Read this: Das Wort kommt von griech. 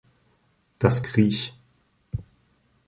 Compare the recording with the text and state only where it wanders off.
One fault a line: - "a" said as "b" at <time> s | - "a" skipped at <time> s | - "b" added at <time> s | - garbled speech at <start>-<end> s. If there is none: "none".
- "Wort kommt von" skipped at 1.1 s